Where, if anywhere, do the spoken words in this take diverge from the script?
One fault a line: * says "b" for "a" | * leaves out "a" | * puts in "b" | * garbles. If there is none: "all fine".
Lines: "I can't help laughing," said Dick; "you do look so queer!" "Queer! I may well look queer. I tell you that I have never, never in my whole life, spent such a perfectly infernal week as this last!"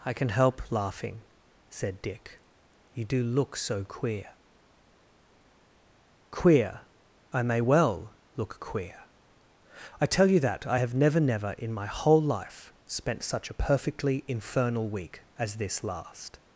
* says "can" for "can't"